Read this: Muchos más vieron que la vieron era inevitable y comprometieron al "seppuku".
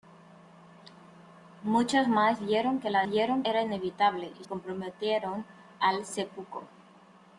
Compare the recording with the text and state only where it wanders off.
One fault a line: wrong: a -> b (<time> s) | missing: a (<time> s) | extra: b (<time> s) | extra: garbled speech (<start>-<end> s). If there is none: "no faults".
no faults